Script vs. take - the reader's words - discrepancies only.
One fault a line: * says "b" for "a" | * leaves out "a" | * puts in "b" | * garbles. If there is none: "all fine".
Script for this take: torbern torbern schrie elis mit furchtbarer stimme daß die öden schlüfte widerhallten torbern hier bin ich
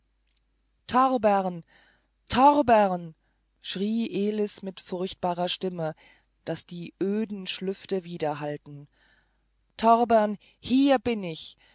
all fine